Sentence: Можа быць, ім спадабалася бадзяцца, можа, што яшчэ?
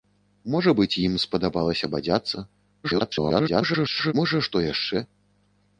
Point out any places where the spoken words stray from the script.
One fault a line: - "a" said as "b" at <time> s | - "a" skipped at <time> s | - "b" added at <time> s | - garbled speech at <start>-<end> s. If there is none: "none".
- garbled speech at 2.8-4.1 s